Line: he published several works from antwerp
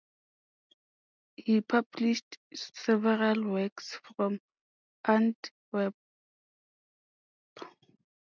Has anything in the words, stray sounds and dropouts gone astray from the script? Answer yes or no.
no